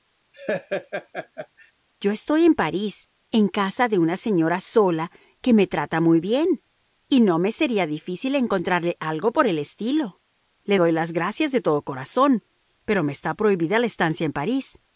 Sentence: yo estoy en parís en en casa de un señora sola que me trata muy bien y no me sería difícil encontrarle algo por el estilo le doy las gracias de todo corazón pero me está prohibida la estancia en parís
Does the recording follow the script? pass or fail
fail